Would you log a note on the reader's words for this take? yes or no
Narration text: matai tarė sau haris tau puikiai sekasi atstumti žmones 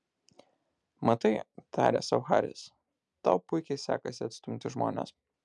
no